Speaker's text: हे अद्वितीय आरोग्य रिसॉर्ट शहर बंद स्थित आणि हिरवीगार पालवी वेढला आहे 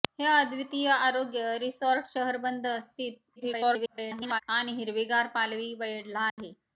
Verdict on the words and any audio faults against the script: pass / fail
fail